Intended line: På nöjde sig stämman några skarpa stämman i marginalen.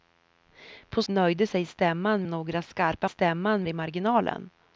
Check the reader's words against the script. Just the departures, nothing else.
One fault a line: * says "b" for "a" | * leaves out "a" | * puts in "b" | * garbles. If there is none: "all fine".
all fine